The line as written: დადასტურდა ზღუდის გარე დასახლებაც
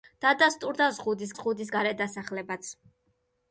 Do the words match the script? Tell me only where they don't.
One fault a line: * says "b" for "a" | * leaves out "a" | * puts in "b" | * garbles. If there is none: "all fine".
* puts in "ზღუდის"